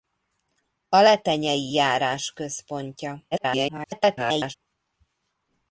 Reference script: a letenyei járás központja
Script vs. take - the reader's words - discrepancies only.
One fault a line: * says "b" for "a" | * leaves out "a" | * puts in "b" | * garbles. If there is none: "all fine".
* garbles